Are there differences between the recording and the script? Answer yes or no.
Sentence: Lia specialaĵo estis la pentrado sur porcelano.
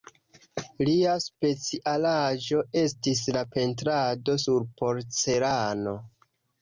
no